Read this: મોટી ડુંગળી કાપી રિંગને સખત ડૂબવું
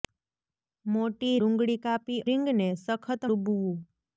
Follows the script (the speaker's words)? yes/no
yes